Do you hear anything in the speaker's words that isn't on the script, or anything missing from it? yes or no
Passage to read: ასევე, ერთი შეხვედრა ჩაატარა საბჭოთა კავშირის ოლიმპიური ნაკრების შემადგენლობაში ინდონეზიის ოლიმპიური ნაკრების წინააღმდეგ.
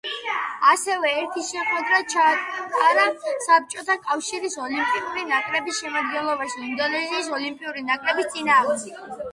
no